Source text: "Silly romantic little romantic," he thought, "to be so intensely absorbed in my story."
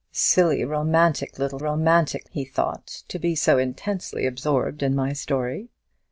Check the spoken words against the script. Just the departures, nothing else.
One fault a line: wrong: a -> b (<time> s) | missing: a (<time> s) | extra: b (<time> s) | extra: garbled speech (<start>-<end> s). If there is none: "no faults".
no faults